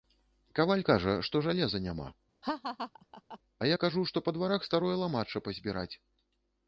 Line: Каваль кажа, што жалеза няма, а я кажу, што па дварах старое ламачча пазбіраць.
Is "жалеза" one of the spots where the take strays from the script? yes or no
no